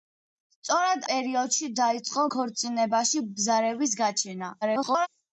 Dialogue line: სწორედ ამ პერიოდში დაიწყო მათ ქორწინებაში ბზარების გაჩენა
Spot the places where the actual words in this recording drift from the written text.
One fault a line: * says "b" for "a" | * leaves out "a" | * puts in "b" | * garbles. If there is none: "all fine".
* leaves out "ამ"
* leaves out "მათ"
* garbles